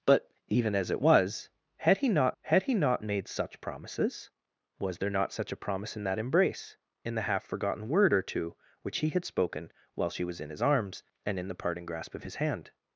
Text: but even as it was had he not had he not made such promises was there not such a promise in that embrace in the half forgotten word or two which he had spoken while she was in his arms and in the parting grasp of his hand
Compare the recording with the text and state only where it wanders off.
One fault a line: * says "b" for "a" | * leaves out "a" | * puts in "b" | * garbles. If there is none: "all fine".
all fine